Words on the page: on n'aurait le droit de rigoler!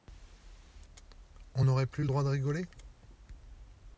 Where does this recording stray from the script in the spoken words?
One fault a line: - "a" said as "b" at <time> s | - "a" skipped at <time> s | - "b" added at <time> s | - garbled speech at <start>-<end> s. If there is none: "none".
- "plus" added at 1.9 s